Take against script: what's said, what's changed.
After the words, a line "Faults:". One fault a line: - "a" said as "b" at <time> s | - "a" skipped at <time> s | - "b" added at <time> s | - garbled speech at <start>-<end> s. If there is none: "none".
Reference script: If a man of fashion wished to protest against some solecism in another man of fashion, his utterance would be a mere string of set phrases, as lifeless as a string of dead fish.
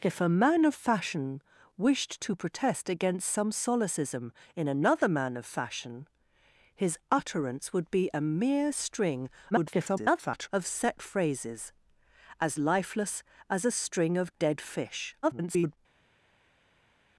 If a man of fashion wished to protest against some solecism in another man of fashion, his utterance would be a mere string [garbled] of set phrases, as lifeless as a string of dead fish. [garbled]
Faults:
- garbled speech at 9.5-10.5 s
- garbled speech at 15.2-15.8 s